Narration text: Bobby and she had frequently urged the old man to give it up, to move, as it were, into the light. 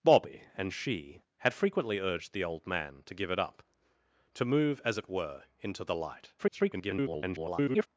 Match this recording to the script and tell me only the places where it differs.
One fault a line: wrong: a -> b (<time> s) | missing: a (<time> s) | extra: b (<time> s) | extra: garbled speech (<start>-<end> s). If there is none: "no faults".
extra: garbled speech (6.4-7.9 s)